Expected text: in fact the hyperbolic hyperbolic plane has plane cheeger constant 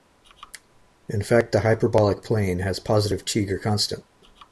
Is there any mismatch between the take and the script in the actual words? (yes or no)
yes